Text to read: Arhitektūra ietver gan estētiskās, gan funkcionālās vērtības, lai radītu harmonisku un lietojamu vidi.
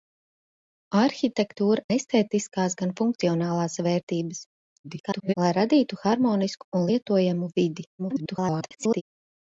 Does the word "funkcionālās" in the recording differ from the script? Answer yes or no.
no